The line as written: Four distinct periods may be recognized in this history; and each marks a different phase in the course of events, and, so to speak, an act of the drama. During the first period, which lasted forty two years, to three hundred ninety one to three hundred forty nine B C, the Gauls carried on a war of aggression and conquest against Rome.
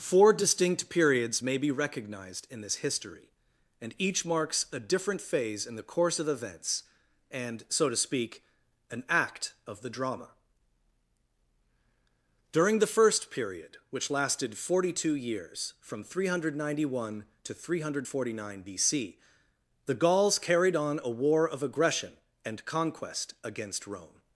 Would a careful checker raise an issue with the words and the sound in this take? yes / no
yes